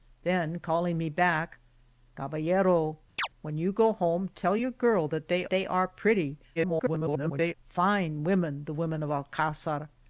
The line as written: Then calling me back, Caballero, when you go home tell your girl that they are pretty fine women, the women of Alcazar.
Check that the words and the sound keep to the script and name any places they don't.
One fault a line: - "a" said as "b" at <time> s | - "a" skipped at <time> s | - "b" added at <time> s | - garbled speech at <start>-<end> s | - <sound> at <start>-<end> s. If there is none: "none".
- chirp at 3.2-3.3 s
- "they" added at 5.5 s
- garbled speech at 6.6-7.5 s